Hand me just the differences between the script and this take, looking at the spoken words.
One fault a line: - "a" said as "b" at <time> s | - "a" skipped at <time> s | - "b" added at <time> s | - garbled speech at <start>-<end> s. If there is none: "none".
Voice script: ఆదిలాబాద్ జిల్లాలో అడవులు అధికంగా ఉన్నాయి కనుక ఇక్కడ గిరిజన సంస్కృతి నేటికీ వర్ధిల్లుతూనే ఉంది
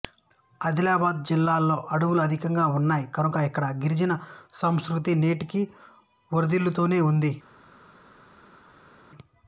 none